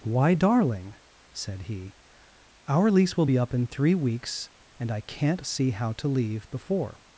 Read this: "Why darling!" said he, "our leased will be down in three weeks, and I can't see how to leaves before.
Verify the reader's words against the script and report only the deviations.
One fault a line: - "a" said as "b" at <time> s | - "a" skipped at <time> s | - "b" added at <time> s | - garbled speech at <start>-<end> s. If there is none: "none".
- "leased" said as "lease" at 2.9 s
- "down" said as "up" at 3.4 s
- "leaves" said as "leave" at 6.1 s